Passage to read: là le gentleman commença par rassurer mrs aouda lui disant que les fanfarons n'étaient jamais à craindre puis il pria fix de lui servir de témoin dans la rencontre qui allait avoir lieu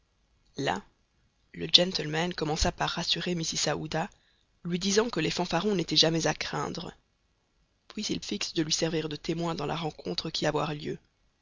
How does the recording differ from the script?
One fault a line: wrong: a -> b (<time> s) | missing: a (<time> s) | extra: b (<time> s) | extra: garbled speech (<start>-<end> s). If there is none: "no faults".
missing: pria (8.2 s)
missing: allait (10.5 s)